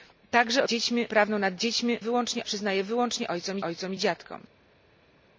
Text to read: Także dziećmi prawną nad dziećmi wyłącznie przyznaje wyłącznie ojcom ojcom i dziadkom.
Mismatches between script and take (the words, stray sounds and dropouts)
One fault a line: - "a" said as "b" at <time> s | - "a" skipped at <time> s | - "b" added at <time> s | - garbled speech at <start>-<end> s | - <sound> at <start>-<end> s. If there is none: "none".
none